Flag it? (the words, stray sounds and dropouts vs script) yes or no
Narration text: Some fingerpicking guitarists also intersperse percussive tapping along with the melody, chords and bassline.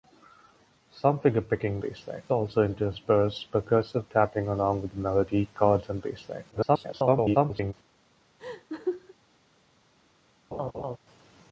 yes